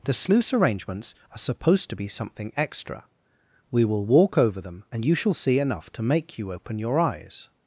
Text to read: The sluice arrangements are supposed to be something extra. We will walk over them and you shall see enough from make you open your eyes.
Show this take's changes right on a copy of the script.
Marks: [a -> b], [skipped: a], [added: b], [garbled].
The sluice arrangements are supposed to be something extra. We will walk over them and you shall see enough [from -> to] make you open your eyes.